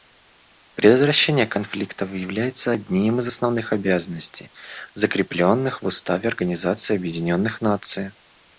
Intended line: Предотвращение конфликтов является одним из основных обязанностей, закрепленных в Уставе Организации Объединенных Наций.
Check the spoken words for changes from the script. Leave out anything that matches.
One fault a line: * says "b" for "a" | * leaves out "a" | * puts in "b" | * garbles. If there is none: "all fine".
all fine